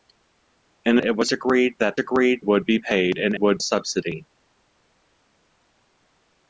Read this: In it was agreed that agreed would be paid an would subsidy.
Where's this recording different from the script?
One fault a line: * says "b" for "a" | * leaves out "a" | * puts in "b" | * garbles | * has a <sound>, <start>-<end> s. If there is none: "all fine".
all fine